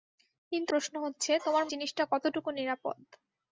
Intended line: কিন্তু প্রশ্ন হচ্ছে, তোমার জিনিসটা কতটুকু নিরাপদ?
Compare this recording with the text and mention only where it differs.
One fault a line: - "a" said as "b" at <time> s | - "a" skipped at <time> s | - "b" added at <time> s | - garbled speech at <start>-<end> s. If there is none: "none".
none